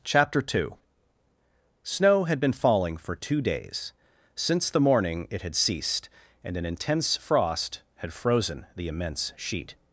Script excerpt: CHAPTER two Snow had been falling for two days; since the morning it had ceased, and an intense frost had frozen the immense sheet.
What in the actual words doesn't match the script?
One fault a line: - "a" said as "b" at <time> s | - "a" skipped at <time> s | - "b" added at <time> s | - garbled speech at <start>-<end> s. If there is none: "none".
none